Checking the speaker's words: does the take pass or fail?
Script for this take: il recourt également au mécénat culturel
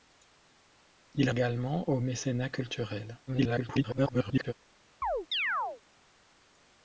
fail